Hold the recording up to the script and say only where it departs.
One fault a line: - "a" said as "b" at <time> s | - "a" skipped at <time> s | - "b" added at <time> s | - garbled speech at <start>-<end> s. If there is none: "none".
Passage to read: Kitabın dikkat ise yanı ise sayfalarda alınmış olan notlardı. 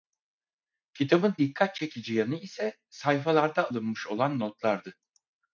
- "ise" said as "çekici" at 1.8 s